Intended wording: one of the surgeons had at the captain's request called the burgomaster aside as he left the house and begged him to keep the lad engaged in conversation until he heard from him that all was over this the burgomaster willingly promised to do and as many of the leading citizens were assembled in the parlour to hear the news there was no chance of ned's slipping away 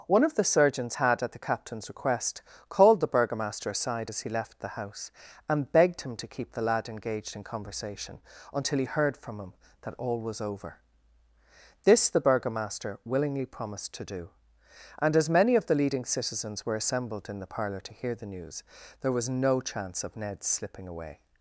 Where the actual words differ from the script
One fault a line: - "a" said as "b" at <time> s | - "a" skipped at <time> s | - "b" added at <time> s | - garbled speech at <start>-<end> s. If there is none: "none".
none